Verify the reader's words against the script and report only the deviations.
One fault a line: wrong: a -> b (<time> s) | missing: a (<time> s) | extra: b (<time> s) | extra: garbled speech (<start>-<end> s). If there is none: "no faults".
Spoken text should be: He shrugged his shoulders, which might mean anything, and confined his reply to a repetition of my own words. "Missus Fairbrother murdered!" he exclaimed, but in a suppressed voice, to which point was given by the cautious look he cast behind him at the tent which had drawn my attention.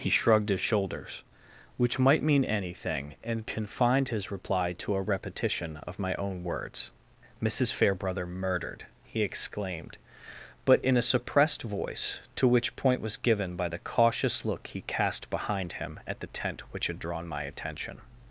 no faults